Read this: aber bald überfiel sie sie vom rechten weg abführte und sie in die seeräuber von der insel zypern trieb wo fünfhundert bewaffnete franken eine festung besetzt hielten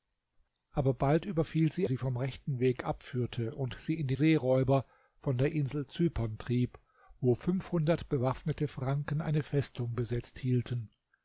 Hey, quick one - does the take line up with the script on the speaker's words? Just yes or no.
yes